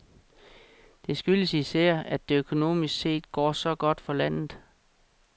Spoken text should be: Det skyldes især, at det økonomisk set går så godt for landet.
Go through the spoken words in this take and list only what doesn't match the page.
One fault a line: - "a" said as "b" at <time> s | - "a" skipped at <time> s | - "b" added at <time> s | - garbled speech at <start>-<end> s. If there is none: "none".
none